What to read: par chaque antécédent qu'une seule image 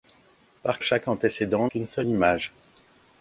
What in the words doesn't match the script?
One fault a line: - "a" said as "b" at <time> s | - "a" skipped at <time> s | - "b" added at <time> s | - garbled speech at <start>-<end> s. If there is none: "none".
none